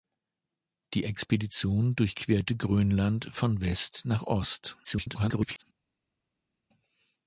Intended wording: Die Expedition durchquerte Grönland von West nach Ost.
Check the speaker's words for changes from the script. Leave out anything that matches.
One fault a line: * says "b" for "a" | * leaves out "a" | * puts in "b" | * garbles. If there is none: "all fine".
* garbles